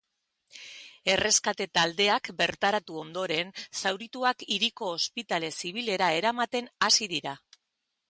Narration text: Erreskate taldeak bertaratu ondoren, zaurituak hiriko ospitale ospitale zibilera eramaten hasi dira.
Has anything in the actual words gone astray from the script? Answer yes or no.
yes